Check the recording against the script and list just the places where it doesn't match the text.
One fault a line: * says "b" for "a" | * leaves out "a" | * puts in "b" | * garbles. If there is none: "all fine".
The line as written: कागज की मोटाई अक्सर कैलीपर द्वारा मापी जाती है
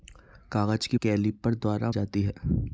* leaves out "मोटाई अक्सर"
* leaves out "मापी"